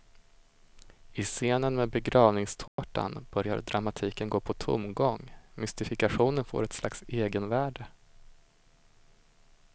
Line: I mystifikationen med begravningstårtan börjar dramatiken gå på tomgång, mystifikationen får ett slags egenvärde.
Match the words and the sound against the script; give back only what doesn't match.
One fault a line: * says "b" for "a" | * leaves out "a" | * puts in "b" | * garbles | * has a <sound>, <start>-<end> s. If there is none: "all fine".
* says "scenen" for "mystifikationen"
* has a dropout, 2.7-2.8 s